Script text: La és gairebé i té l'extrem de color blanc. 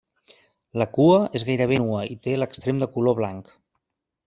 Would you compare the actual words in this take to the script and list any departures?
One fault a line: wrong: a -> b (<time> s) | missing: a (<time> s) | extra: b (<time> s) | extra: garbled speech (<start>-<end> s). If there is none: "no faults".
extra: cua (0.9 s)
extra: nua (1.9 s)